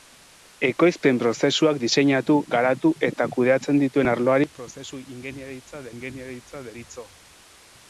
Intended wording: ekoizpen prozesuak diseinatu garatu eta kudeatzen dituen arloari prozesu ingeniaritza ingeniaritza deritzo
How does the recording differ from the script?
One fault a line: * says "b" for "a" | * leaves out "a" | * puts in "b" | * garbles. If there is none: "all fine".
all fine